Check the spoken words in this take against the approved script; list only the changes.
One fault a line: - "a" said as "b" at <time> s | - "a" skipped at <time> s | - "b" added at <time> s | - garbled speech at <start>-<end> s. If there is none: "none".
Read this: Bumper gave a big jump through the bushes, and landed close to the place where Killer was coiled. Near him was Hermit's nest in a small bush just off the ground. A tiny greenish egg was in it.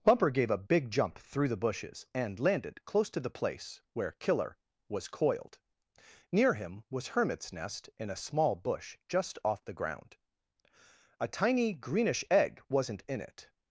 - "was" said as "wasn't" at 12.7 s